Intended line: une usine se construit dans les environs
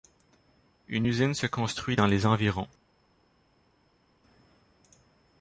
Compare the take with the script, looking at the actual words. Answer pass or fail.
pass